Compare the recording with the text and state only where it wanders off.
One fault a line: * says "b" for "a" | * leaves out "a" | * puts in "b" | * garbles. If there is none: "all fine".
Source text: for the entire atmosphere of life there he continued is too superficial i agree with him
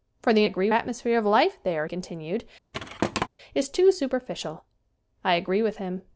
* says "agree" for "entire"
* leaves out "he"